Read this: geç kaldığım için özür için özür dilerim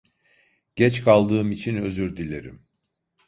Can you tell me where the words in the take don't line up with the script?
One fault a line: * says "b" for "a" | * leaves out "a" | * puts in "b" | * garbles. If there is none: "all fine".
* leaves out "için özür"